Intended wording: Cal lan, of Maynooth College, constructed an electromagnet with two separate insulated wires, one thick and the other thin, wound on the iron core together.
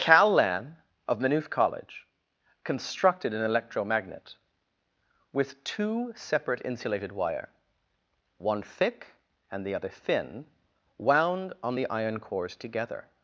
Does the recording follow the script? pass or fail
fail